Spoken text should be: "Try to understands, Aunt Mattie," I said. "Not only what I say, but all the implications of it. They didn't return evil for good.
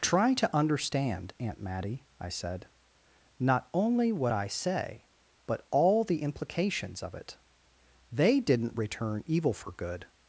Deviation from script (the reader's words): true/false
true